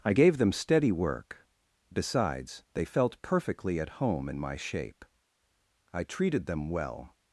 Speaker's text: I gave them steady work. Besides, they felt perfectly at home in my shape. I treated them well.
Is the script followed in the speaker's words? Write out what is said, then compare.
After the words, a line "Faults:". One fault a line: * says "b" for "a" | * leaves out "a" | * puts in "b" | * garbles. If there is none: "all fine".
I gave them steady work. Besides, they felt perfectly at home in my shape. I treated them well.
Faults:
all fine